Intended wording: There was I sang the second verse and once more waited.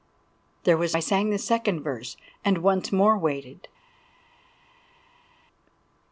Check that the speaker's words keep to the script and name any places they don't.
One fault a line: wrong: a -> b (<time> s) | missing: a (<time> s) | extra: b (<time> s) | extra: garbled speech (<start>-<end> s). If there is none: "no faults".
no faults